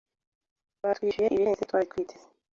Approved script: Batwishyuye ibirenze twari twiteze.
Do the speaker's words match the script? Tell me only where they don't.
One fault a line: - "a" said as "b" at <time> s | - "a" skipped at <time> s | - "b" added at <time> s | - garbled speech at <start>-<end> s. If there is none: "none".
none